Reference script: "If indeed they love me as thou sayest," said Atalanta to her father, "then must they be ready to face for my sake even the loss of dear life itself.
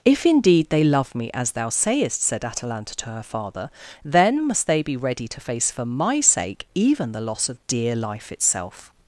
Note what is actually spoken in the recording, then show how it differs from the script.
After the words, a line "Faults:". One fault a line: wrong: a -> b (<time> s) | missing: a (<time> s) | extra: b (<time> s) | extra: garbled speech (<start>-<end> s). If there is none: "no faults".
"If indeed they love me as thou sayest," said Atalanta to her father, "then must they be ready to face for my sake even the loss of dear life itself.
Faults:
no faults